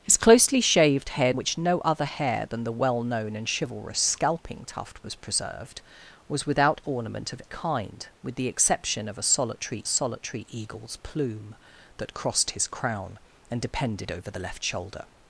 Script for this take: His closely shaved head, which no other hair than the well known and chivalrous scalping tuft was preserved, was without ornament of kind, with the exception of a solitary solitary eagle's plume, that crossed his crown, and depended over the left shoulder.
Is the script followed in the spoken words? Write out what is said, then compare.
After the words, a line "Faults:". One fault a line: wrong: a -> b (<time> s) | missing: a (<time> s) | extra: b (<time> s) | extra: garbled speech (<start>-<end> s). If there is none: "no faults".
His closely shaved head, which no other hair than the well known and chivalrous scalping tuft was preserved, was without ornament of kind, with the exception of a solitary solitary eagle's plume, that crossed his crown, and depended over the left shoulder.
Faults:
no faults